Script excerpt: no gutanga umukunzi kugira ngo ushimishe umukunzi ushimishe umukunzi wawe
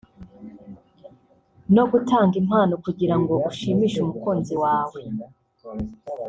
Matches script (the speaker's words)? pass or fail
fail